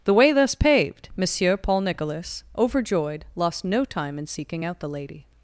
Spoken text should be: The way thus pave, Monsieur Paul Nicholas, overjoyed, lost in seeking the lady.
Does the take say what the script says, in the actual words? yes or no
no